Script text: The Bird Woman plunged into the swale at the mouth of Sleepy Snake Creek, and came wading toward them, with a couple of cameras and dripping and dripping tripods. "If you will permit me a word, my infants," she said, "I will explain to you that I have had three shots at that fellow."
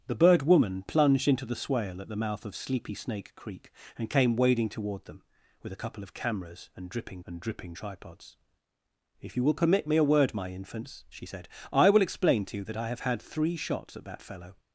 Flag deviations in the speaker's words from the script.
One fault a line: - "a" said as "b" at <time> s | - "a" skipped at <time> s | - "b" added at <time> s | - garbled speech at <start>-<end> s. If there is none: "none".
none